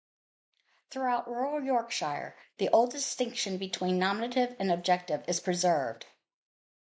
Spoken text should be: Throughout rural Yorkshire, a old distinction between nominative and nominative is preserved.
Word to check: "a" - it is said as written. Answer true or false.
false